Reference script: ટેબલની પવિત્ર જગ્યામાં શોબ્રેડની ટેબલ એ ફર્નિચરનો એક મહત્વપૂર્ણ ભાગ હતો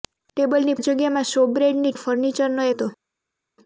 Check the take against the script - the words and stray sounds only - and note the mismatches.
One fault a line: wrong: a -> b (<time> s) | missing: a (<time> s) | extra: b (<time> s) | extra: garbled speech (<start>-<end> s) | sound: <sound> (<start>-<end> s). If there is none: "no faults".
missing: પવિત્ર (0.8 s)
missing: ટેબલ (1.9 s)
missing: એક મહત્વપૂર્ણ ભાગ (2.7 s)